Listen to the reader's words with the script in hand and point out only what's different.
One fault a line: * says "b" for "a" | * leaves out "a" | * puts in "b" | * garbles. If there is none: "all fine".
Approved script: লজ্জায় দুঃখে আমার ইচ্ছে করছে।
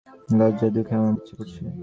all fine